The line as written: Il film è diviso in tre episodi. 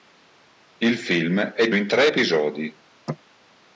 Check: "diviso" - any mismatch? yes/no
yes